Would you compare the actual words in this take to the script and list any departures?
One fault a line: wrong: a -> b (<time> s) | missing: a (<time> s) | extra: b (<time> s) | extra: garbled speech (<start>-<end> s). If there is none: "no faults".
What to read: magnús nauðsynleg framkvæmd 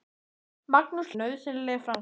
no faults